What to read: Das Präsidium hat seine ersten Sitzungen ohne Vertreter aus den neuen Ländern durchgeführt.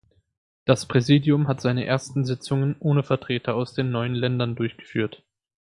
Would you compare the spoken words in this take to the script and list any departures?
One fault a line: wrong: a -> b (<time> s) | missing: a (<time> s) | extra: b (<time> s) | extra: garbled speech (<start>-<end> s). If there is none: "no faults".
no faults